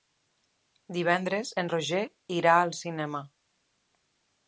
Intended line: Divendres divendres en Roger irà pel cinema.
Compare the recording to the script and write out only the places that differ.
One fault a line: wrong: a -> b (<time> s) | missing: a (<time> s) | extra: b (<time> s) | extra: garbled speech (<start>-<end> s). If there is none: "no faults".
missing: divendres (1.5 s)
wrong: pel -> al (2.6 s)